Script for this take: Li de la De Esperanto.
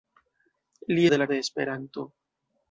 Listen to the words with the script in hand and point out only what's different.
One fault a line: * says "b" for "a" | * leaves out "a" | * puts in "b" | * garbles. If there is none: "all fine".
all fine